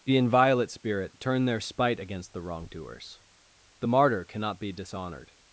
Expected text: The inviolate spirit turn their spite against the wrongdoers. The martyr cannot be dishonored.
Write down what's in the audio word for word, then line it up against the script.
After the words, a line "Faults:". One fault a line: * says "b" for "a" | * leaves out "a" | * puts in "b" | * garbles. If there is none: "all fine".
The inviolate spirit turn their spite against the wrongdoers. The martyr cannot be dishonored.
Faults:
all fine